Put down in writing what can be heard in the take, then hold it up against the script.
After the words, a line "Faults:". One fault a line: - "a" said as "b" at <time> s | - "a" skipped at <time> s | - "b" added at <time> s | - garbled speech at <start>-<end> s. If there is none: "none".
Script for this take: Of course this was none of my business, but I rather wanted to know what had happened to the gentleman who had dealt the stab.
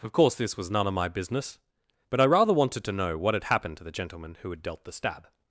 Of course this was none of my business, but I rather wanted to know what had happened to the gentleman who had dealt the stab.
Faults:
none